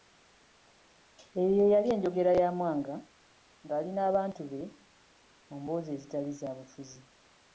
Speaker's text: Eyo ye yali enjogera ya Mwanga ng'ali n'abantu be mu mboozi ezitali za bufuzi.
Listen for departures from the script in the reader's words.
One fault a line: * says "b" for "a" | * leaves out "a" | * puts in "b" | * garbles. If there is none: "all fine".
all fine